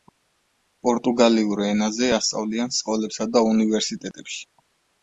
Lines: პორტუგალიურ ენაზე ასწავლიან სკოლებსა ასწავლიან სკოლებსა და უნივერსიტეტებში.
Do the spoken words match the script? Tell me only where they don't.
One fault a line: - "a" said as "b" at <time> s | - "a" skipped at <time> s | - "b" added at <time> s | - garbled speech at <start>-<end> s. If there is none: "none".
- "ასწავლიან სკოლებსა" skipped at 3.3 s